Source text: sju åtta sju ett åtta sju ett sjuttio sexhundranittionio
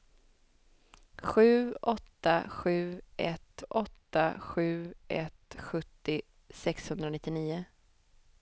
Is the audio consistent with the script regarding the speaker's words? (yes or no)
yes